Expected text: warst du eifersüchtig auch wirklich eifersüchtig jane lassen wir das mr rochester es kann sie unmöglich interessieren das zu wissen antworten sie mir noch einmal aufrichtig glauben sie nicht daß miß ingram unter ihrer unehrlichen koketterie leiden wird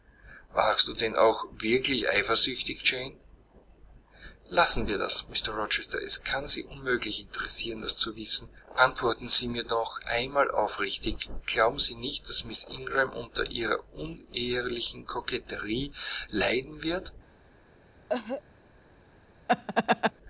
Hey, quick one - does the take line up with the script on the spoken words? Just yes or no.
no